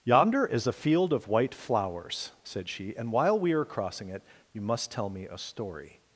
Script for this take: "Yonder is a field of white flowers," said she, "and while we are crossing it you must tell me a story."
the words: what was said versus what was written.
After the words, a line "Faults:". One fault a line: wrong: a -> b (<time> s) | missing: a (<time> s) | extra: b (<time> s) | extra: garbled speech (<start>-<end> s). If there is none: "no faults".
"Yonder is a field of white flowers," said she, "and while we are crossing it you must tell me a story."
Faults:
no faults